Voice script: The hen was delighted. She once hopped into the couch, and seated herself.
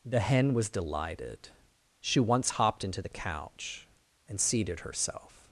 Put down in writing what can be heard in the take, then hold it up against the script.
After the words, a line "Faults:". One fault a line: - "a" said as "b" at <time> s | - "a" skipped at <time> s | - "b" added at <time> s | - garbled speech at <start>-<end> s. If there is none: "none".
The hen was delighted. She once hopped into the couch, and seated herself.
Faults:
none